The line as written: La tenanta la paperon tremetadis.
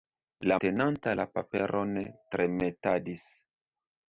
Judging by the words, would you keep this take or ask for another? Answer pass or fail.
pass